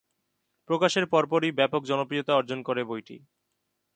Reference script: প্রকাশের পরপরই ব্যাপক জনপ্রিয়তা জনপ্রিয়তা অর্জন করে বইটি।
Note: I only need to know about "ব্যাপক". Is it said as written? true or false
true